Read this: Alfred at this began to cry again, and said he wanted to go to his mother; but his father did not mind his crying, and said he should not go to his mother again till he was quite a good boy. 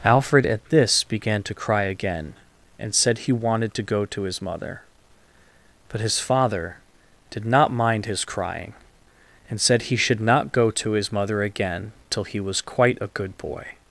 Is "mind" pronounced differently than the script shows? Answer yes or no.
no